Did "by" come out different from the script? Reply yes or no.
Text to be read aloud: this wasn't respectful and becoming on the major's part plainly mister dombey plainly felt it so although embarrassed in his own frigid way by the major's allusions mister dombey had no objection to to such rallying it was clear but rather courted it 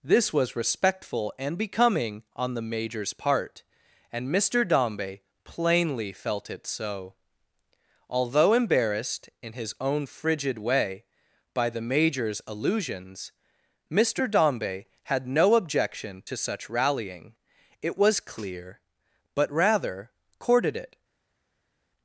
no